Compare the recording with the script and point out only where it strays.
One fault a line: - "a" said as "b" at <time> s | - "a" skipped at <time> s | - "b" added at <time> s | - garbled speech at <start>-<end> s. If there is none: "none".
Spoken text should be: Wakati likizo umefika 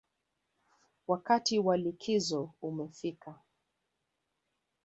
- "wa" added at 1.6 s